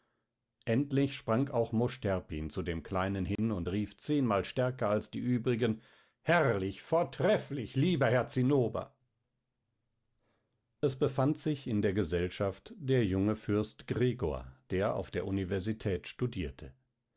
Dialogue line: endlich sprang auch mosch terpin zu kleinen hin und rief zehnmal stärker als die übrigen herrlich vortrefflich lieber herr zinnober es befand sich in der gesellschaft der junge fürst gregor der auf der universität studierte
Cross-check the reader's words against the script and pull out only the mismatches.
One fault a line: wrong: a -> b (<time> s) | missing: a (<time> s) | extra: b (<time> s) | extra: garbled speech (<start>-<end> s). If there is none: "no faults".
extra: dem (2.6 s)